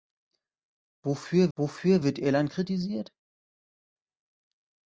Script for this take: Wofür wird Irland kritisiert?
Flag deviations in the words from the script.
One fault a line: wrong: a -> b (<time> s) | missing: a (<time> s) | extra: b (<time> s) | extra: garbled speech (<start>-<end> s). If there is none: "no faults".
extra: wofür (1.6 s)